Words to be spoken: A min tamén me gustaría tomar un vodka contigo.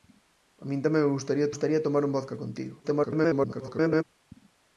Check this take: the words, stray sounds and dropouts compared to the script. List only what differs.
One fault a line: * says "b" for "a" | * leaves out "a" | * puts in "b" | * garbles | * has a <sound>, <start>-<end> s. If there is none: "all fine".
* puts in "gustaría"
* garbles